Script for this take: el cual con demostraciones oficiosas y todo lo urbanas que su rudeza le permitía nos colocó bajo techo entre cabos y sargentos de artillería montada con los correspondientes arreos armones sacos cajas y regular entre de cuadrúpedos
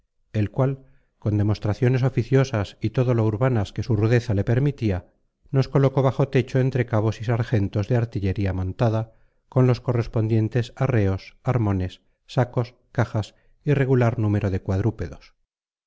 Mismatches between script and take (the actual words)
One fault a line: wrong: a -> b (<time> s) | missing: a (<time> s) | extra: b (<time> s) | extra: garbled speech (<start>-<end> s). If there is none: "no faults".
wrong: entre -> número (14.2 s)